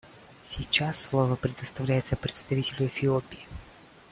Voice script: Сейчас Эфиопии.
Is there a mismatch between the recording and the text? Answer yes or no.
yes